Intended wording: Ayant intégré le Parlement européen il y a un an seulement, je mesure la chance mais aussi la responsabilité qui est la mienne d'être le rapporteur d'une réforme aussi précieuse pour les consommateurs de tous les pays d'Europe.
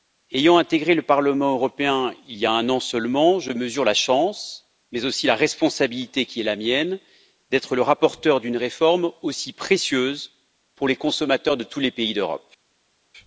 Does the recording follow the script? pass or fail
pass